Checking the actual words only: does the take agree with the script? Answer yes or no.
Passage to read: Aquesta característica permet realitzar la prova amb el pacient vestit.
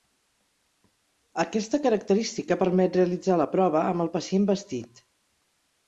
yes